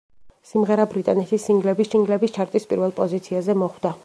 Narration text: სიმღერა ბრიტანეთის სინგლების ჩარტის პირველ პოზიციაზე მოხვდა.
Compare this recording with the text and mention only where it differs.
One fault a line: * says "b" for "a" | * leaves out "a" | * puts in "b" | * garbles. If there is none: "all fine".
* puts in "სინგლების"